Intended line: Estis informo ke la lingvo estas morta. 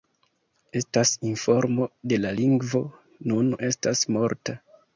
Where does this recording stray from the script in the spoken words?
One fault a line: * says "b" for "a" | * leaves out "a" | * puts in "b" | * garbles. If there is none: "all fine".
* says "Estas" for "Estis"
* puts in "nun"